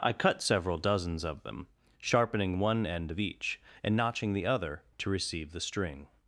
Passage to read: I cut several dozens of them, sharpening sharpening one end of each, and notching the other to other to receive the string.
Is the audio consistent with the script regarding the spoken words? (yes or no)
no